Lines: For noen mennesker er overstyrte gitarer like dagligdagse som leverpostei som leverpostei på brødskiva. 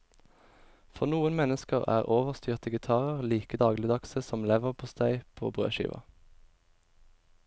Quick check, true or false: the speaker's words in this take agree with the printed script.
false